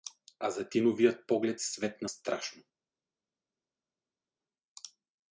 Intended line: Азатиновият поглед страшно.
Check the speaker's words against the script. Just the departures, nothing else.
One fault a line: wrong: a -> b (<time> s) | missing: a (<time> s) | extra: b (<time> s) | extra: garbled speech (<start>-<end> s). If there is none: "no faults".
extra: светна (1.6 s)